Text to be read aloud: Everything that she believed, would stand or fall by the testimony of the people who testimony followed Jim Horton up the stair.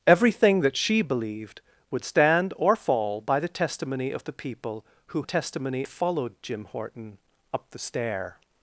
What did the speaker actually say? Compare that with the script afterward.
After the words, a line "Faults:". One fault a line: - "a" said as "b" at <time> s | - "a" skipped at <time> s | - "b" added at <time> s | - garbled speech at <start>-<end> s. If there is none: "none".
Everything that she believed, would stand or fall by the testimony of the people who testimony followed Jim Horton up the stair.
Faults:
none